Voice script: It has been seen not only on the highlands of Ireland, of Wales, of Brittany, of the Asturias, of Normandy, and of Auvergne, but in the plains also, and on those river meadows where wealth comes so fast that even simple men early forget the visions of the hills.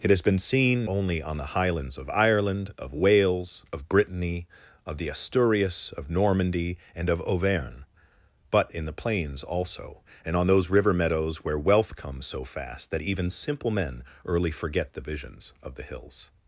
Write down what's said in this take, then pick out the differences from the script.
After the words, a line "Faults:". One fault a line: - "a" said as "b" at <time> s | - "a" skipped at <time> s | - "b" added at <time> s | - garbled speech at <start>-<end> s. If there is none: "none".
It has been seen only on the highlands of Ireland, of Wales, of Brittany, of the Asturias, of Normandy, and of Auvergne, but in the plains also, and on those river meadows where wealth comes so fast that even simple men early forget the visions of the hills.
Faults:
- "not" skipped at 0.9 s